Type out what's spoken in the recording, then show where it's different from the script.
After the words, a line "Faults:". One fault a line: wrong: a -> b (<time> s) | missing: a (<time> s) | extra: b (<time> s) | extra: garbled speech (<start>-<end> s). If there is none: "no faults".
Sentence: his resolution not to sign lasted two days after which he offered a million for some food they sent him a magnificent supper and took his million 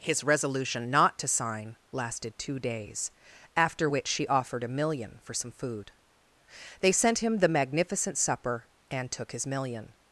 his resolution not to sign lasted two days after which she offered a million for some food they sent him the magnificent supper and took his million
Faults:
wrong: he -> she (4.1 s)
wrong: a -> the (7.4 s)